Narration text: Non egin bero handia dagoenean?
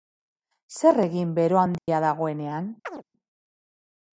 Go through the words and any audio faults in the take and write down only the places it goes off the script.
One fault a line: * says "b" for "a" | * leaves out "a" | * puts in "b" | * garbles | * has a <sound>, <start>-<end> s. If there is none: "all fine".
* says "Zer" for "Non"
* has a dropout, 1.8-1.9 s
* has a chirp, 2.8-3.0 s